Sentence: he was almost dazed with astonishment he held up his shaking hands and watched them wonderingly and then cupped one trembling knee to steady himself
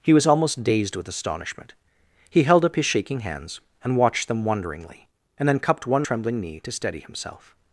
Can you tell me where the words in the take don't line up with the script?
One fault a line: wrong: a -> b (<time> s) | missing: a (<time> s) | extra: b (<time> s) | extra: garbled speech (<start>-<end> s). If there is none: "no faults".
no faults